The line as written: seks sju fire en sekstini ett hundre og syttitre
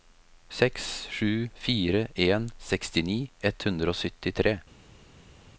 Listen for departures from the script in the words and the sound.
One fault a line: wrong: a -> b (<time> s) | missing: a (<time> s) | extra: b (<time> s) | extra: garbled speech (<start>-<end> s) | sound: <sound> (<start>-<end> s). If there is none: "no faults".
no faults